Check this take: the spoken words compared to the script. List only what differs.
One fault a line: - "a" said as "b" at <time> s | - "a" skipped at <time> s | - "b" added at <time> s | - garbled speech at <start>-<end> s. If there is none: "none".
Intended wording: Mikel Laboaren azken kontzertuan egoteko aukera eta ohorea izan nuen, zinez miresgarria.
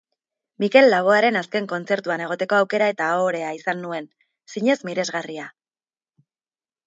none